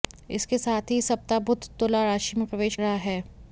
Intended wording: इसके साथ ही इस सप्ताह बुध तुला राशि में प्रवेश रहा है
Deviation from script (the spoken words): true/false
false